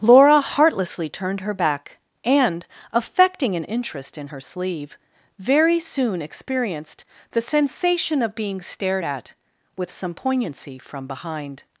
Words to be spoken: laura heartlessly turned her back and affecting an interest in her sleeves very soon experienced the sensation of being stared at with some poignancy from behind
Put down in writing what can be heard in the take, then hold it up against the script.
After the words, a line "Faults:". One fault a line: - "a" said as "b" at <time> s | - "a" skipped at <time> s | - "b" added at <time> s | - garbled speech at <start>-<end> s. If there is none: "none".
laura heartlessly turned her back and affecting an interest in her sleeve very soon experienced the sensation of being stared at with some poignancy from behind
Faults:
- "sleeves" said as "sleeve" at 4.4 s